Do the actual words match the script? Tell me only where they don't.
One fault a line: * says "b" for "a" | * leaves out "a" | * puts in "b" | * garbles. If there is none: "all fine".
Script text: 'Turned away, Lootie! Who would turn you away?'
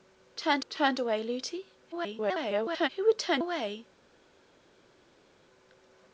* puts in "turned"
* garbles
* leaves out "you"